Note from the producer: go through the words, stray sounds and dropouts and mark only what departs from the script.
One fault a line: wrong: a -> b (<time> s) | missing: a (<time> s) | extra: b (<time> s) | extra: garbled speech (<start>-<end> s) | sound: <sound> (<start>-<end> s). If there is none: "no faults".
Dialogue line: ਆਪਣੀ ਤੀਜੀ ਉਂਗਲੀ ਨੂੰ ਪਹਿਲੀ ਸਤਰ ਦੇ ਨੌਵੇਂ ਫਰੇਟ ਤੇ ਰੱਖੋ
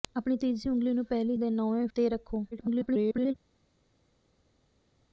missing: ਸਤਰ (1.4 s)
missing: ਫਰੇਟ (1.9 s)
extra: garbled speech (2.5-3.3 s)